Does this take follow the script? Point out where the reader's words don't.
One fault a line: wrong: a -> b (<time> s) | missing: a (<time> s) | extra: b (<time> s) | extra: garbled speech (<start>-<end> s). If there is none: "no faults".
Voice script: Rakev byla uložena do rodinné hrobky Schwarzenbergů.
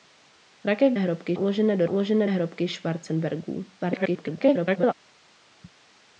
wrong: byla -> hrobky (1.0 s)
wrong: rodinné -> uložena (1.9 s)
extra: garbled speech (3.8-4.9 s)